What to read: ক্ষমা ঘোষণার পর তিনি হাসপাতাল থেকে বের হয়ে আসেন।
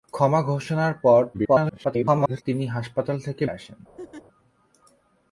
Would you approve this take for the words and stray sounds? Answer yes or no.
no